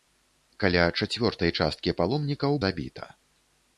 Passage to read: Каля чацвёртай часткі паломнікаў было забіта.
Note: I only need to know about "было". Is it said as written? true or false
false